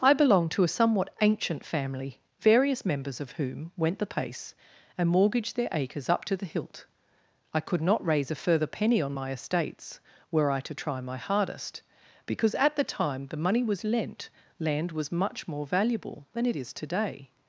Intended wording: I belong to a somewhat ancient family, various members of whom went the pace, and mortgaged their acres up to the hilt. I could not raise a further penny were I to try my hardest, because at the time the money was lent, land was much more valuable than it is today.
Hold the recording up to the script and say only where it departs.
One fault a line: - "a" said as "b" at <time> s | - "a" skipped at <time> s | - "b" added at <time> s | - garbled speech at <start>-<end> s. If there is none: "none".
- "on my estates" added at 9.0 s